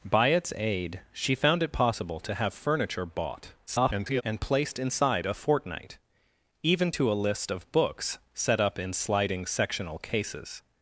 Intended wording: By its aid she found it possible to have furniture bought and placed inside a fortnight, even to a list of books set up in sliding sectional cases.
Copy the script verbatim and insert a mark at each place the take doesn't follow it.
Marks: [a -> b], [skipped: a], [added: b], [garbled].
By its aid she found it possible to have furniture bought [garbled] and placed inside a fortnight, even to a list of books set up in sliding sectional cases.